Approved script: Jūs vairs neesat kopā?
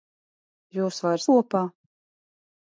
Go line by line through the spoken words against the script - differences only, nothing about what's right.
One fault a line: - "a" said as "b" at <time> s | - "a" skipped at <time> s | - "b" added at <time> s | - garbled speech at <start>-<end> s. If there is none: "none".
- "neesat" skipped at 1.3 s